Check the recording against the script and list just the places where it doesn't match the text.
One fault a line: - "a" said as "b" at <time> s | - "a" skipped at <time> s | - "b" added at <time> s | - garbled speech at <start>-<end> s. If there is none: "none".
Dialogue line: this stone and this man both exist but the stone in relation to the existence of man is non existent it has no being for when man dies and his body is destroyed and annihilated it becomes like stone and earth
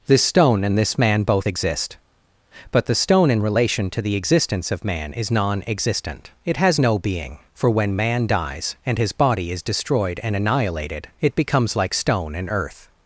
none